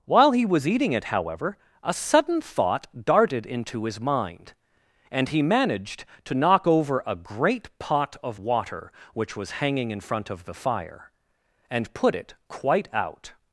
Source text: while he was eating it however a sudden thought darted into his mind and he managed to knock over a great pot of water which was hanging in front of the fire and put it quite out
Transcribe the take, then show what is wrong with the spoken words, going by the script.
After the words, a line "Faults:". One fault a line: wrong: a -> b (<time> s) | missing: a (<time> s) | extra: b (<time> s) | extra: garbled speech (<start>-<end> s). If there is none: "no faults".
while he was eating it however a sudden thought darted into his mind and he managed to knock over a great pot of water which was hanging in front of the fire and put it quite out
Faults:
no faults